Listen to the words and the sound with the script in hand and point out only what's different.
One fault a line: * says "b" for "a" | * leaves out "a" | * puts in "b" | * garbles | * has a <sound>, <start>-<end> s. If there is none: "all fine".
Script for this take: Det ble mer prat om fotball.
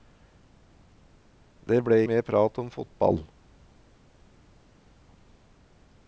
all fine